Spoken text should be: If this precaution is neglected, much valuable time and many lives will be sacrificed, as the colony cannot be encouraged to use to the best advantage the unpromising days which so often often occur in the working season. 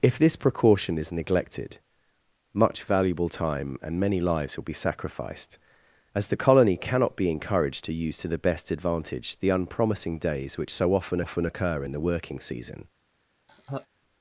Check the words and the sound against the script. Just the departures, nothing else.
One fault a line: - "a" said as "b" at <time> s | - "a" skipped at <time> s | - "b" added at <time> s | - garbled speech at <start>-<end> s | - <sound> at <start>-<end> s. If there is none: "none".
- laugh at 13.5-13.9 s